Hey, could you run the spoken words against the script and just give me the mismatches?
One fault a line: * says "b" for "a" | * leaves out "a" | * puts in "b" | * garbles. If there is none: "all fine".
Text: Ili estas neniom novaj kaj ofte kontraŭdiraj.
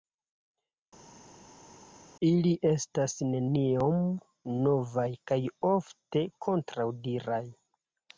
all fine